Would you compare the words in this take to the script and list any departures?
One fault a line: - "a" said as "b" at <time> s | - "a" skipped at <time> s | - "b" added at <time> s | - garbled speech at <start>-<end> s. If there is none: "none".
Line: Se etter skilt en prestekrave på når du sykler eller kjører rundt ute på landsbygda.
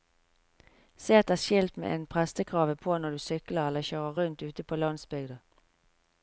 - "med" added at 1.8 s